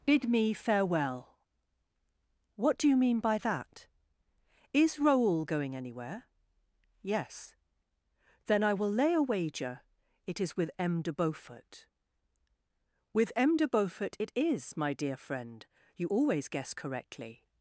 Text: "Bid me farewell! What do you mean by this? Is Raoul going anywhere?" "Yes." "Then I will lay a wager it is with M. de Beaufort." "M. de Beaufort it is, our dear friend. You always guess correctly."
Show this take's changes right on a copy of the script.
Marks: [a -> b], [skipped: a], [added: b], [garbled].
"Bid me farewell! What do you mean by [this? -> that] Is Raoul going anywhere?" "Yes." "Then I will lay a wager it is with M. de Beaufort." [added: With] "M. de Beaufort it is, [our -> my] dear friend. You always guess correctly."